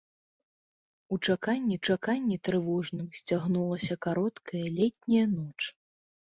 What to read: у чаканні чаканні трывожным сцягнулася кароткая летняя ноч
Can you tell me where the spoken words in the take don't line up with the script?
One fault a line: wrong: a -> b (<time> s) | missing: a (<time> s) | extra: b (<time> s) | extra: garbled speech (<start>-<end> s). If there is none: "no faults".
no faults